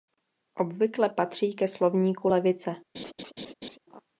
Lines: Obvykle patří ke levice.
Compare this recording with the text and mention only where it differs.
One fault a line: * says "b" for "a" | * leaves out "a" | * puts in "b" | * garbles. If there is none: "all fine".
* puts in "slovníku"